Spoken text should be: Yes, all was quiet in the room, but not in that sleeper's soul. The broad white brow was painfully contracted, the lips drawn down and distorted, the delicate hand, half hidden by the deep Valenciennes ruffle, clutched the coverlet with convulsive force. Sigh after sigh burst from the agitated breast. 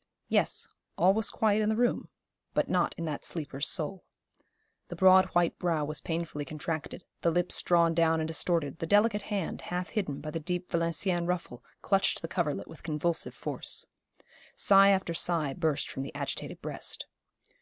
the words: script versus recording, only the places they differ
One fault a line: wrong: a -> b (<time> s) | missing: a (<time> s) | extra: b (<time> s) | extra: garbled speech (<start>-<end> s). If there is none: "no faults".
no faults